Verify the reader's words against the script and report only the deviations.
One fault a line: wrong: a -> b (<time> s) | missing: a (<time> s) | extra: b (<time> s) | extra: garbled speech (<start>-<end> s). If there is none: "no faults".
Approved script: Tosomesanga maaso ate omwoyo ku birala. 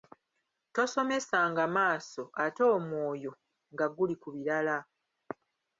extra: nga guli (3.7 s)